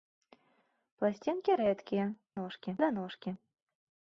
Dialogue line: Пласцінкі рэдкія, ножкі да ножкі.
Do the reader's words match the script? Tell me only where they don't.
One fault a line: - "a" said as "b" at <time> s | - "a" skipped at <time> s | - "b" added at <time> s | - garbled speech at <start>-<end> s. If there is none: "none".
none